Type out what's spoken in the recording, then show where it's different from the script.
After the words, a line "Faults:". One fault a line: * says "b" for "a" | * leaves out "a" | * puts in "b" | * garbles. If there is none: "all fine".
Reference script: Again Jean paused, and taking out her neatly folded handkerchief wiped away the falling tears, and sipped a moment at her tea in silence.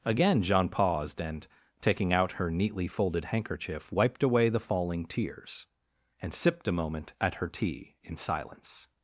Again Jean paused, and taking out her neatly folded handkerchief wiped away the falling tears, and sipped a moment at her tea in silence.
Faults:
all fine